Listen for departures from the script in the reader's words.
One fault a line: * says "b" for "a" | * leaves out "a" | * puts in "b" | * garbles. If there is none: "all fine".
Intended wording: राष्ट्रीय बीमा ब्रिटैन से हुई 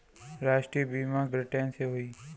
all fine